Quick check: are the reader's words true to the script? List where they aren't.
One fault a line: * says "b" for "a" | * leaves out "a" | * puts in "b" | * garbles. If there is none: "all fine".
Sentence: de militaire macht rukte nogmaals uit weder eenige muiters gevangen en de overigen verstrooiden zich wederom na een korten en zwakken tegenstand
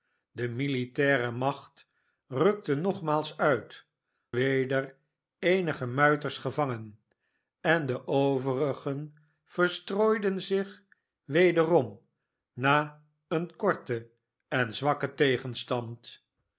all fine